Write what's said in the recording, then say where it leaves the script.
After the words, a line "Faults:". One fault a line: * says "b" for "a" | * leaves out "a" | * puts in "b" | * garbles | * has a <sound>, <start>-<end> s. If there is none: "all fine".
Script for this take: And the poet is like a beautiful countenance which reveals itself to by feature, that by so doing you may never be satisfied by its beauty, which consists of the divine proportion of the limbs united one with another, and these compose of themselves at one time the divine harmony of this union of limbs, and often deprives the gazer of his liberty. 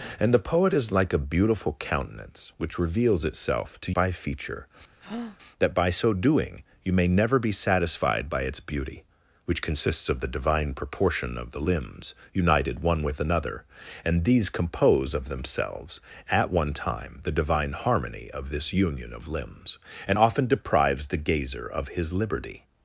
And the poet is like a beautiful countenance which reveals itself to by feature, that by so doing you may never be satisfied by its beauty, which consists of the divine proportion of the limbs united one with another, and these compose of themselves at one time the divine harmony of this union of limbs, and often deprives the gazer of his liberty.
Faults:
* has a breath, 5.0-5.4 s